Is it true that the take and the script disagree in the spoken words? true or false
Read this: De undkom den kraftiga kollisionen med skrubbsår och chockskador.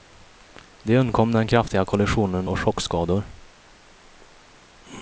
true